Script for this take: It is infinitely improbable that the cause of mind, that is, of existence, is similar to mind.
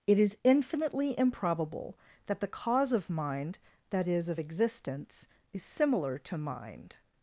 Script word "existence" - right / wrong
right